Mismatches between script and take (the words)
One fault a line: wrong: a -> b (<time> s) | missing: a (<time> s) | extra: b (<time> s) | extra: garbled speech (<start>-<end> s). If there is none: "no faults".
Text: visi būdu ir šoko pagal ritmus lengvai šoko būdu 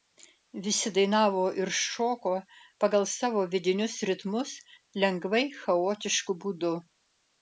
wrong: būdu -> dainavo (0.9 s)
extra: savo vidinius (3.1 s)
wrong: šoko -> chaotišku (5.6 s)